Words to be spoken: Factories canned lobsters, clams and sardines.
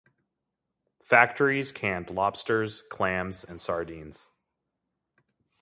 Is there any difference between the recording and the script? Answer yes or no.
no